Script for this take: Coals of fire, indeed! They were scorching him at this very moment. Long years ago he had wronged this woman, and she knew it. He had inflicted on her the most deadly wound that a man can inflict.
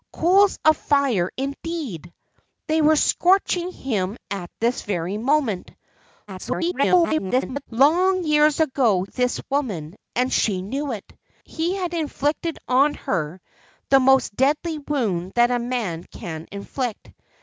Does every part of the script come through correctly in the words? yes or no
no